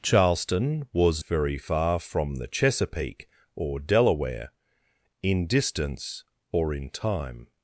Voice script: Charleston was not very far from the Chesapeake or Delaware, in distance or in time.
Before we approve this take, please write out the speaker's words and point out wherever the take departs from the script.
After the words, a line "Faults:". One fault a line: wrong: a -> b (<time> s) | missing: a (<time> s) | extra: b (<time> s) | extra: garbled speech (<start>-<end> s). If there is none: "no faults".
Charleston was very far from the Chesapeake or Delaware, in distance or in time.
Faults:
missing: not (1.2 s)